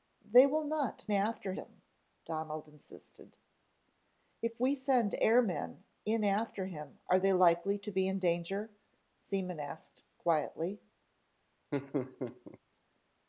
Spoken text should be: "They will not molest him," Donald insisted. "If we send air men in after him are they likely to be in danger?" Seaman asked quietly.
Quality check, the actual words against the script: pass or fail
fail